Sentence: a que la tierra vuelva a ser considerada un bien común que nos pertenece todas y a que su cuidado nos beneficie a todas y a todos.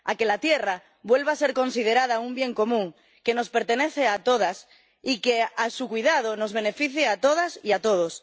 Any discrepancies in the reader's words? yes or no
yes